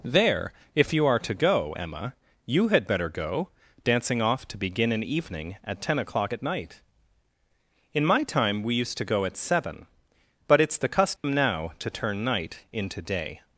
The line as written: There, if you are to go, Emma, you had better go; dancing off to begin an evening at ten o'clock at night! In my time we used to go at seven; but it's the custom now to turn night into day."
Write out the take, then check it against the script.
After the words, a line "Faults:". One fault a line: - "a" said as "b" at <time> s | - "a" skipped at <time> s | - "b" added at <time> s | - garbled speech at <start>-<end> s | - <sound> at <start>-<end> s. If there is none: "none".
There, if you are to go, Emma, you had better go; dancing off to begin an evening at ten o'clock at night! In my time we used to go at seven; but it's the custom now to turn night into day."
Faults:
- dropout at 11.2-11.2 s